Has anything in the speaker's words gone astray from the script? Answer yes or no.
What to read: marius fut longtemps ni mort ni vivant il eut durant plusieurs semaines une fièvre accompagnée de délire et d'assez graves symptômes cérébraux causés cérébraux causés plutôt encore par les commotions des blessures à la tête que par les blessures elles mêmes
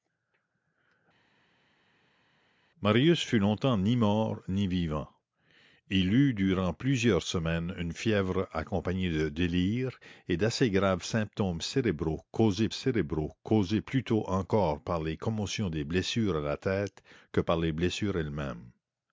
no